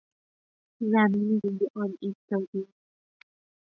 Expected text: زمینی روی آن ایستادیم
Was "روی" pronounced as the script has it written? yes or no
yes